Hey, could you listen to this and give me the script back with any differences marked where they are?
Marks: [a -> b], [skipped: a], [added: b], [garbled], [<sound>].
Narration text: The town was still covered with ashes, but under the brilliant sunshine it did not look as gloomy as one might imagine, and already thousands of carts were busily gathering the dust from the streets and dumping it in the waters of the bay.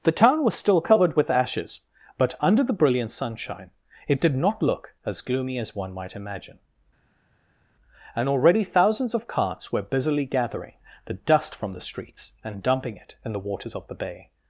The town was still covered with ashes, but under the brilliant sunshine it did not look as gloomy as one might imagine, and already thousands of carts were busily gathering the dust from the streets and dumping it in the waters of the bay.